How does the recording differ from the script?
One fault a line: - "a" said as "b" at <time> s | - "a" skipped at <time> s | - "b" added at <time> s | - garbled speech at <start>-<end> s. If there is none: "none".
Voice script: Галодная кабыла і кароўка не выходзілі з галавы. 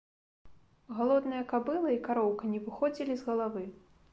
none